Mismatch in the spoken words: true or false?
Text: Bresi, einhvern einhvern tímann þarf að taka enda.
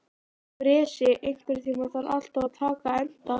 true